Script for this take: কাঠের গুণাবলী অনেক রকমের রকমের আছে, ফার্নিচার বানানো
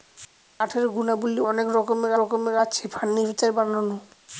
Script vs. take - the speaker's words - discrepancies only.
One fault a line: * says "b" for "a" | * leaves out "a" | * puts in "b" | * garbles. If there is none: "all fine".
all fine